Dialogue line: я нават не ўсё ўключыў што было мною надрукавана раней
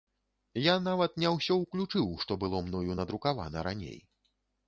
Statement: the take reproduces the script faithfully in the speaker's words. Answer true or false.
true